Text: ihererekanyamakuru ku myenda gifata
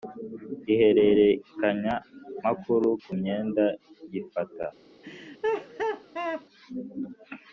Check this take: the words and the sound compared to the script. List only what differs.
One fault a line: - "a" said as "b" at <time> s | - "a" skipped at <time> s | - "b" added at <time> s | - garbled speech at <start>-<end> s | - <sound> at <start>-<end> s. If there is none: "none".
- laugh at 5.0-6.5 s